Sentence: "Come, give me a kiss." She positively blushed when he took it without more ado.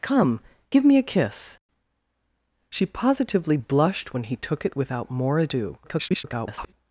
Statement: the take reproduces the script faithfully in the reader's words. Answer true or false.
false